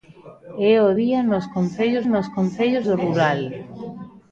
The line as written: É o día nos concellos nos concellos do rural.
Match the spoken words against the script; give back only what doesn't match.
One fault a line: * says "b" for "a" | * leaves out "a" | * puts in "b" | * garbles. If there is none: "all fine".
all fine